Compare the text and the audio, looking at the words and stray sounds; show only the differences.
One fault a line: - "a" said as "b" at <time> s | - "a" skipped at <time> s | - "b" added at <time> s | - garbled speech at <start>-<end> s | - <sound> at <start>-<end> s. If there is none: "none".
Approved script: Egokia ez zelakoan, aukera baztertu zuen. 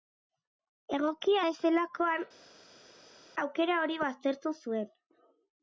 - "hori" added at 3.8 s